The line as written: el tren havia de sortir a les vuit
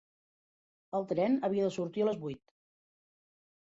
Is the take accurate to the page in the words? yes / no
yes